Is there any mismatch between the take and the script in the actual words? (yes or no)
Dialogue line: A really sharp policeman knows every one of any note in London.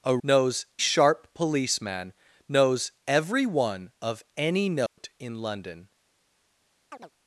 yes